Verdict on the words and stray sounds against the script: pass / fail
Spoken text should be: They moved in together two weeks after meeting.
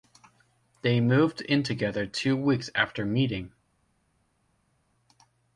pass